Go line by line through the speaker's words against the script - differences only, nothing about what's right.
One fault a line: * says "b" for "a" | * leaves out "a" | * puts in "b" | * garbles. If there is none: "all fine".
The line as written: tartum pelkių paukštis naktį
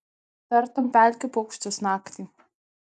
all fine